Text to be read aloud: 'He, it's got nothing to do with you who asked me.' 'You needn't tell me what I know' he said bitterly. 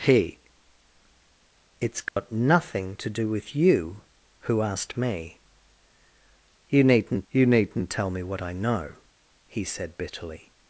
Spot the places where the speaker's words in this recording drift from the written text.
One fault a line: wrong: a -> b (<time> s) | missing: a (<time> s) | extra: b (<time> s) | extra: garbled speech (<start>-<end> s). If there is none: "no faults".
extra: you needn't (7.3 s)